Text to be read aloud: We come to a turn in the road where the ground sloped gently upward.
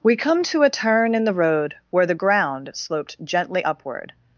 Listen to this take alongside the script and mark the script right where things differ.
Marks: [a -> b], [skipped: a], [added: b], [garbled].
We come to a turn in the road where the ground sloped gently upward.